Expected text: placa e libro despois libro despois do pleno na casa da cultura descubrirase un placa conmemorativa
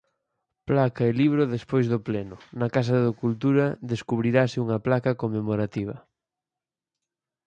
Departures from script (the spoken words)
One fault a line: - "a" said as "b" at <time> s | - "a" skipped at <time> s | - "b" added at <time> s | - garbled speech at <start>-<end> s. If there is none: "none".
- "libro despois" skipped at 1.9 s
- "un" said as "unha" at 4.7 s